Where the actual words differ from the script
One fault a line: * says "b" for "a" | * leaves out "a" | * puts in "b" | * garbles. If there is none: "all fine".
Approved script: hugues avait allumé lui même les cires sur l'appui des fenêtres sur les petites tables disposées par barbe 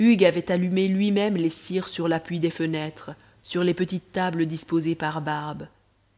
all fine